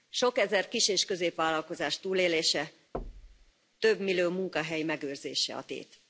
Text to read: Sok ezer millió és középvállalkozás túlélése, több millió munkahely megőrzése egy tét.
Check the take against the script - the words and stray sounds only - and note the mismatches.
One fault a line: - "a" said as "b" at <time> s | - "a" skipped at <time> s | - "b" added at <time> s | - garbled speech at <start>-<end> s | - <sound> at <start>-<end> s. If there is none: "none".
- "millió" said as "kis" at 0.7 s
- thud at 2.9-3.5 s
- "egy" said as "a" at 5.5 s